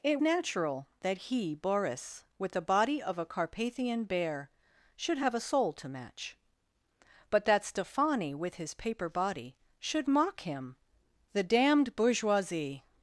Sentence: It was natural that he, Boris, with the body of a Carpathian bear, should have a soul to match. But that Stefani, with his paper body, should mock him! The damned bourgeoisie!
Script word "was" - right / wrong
wrong